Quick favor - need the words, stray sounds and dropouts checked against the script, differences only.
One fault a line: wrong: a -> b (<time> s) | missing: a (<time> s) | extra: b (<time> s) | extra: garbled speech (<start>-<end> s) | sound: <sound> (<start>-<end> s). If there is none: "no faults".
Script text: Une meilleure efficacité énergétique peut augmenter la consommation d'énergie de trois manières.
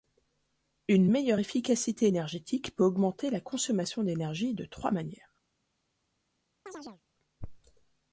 sound: chirp (6.7-7.0 s)